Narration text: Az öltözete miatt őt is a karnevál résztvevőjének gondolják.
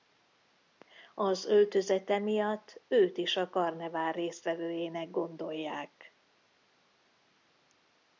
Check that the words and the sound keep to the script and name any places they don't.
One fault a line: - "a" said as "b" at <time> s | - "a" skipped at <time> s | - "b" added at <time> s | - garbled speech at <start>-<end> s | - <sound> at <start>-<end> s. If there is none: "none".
none